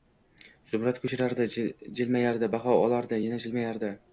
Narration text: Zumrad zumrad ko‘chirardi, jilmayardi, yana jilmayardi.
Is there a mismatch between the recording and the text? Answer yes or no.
yes